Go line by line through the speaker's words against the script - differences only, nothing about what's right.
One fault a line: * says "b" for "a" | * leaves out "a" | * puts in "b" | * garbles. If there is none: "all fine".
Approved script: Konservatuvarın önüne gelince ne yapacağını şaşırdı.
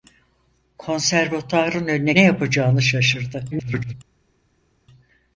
* leaves out "gelince"
* garbles